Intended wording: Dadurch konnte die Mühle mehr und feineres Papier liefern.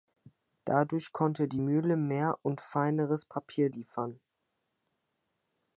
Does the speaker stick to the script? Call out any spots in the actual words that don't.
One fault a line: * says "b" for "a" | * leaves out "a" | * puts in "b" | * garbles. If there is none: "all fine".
all fine